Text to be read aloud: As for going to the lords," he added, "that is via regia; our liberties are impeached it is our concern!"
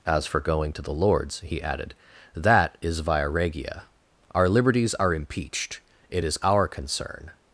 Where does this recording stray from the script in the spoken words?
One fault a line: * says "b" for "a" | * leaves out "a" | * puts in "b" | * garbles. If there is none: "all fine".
all fine